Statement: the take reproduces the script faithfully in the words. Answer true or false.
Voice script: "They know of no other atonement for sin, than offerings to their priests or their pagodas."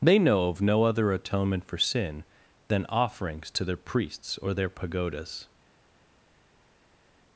true